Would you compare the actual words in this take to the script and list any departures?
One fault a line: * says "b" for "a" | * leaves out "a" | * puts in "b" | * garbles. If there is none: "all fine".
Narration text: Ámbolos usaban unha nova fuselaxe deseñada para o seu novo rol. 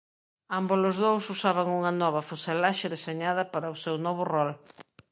* puts in "dous"